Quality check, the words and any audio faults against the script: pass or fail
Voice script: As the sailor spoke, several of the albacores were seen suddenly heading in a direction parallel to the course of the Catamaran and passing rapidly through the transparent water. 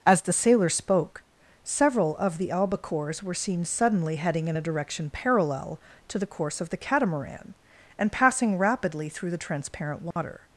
fail